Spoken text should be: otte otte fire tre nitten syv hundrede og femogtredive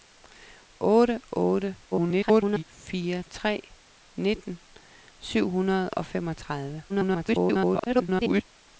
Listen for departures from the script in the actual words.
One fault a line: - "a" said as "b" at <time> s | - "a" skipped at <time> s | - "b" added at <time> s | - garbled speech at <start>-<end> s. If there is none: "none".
- garbled speech at 1.9-2.6 s
- garbled speech at 6.9-8.4 s